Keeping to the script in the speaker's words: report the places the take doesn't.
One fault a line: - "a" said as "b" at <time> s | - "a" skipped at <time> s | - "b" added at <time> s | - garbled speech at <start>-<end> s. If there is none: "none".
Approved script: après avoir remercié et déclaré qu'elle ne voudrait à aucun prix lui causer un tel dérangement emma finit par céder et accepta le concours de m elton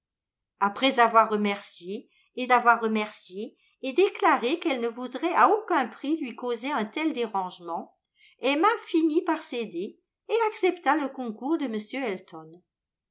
- "avoir remercié et" added at 2.5 s